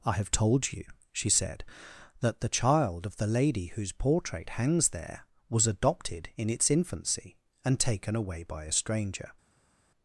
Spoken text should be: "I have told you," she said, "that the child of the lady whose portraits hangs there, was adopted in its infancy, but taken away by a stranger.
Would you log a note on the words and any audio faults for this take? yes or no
yes